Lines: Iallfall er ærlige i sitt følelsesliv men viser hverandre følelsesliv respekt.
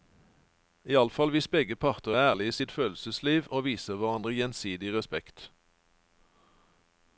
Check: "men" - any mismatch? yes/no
yes